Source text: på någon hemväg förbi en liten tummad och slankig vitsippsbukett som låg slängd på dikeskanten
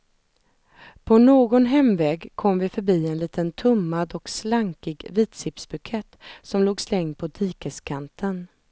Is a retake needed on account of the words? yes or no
yes